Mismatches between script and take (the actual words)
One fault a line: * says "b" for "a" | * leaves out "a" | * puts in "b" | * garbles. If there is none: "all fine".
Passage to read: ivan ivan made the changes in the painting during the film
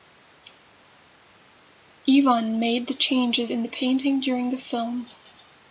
* leaves out "ivan"